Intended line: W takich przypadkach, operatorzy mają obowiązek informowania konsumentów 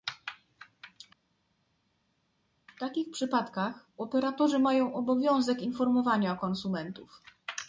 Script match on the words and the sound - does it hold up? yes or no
yes